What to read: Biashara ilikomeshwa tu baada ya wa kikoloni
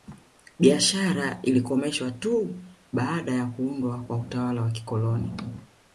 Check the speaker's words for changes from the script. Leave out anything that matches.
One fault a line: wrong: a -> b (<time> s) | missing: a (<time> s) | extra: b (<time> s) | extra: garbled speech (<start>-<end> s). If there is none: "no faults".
extra: kuundwa kwa utawala (3.5 s)